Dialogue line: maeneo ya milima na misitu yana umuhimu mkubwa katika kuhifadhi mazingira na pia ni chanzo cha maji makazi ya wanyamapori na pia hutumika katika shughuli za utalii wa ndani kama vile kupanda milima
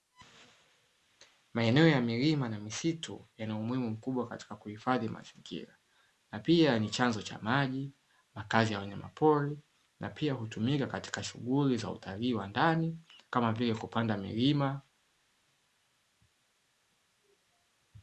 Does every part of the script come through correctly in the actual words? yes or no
yes